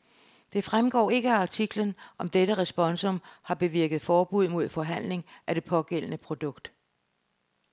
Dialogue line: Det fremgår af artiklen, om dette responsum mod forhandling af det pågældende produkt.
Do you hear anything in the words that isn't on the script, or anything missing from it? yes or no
yes